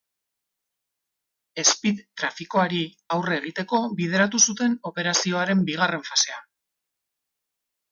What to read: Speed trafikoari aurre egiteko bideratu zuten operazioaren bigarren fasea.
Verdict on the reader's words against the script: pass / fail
pass